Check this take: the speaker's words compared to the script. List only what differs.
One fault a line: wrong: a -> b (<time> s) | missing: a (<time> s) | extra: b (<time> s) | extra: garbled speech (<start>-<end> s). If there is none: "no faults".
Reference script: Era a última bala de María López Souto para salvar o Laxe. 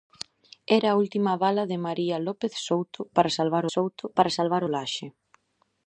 extra: Souto para salvar (3.7 s)